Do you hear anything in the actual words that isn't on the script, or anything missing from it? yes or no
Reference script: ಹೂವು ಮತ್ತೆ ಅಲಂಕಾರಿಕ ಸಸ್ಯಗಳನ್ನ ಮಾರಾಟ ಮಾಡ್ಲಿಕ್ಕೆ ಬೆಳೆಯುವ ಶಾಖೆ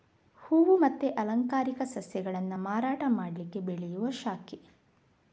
no